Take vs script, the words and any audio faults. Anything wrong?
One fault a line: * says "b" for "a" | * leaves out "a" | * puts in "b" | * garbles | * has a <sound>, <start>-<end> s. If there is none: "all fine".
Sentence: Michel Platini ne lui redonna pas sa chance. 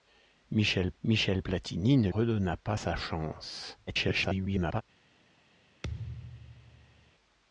* puts in "michel"
* leaves out "lui"
* garbles
* has a thud, 5.8-7.1 s